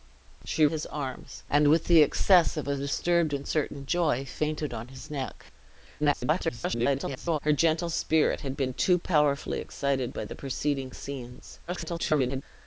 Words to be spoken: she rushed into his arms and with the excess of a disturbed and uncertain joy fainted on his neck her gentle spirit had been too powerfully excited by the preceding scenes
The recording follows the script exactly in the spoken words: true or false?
false